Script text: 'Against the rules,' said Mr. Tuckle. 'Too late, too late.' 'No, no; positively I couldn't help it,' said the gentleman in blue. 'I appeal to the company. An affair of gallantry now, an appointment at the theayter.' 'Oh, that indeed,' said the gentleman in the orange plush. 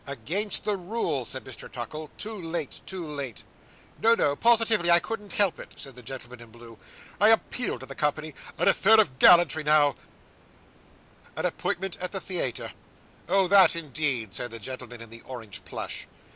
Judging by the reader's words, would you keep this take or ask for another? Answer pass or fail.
pass